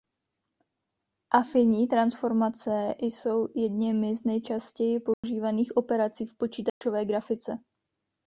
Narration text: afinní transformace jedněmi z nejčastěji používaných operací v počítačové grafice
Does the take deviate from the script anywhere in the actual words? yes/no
yes